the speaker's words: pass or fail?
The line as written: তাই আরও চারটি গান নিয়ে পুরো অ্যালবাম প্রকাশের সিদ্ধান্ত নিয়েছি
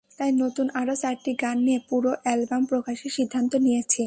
fail